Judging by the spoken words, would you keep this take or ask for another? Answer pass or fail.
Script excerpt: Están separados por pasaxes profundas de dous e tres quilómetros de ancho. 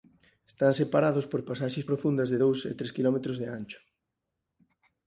pass